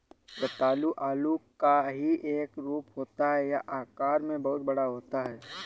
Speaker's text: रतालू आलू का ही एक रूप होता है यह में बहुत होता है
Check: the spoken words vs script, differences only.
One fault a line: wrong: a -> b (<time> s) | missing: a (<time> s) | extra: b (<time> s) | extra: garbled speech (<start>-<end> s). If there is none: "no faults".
extra: आकार (3.8 s)
extra: बड़ा (4.7 s)